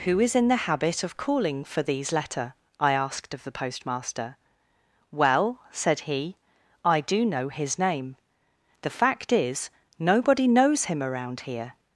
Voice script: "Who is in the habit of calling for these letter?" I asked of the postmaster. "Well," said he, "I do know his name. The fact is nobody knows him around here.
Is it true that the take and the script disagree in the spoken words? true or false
false